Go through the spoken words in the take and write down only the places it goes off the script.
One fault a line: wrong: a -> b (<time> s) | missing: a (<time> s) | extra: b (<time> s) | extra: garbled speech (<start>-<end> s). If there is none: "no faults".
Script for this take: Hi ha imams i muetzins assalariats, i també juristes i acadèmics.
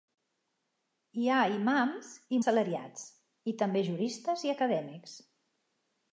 missing: muetzins (2.4 s)